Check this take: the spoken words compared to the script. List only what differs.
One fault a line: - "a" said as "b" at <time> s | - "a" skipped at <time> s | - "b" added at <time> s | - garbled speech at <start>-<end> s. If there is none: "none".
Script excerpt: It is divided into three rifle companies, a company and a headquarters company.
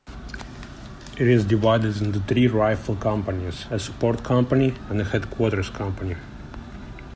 - "support" added at 3.8 s